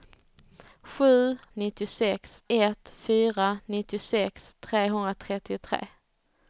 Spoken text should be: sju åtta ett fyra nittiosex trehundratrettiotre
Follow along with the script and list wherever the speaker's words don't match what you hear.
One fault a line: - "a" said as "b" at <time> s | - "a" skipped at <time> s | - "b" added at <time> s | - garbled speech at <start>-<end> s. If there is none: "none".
- "åtta" said as "nittiosex" at 1.5 s